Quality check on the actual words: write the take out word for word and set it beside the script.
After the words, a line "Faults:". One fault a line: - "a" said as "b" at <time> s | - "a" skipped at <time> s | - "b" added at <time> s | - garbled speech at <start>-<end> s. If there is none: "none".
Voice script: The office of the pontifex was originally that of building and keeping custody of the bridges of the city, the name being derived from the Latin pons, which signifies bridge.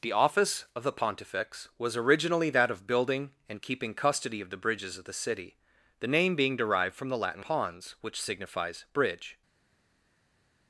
The office of the pontifex was originally that of building and keeping custody of the bridges of the city, the name being derived from the Latin pons, which signifies bridge.
Faults:
none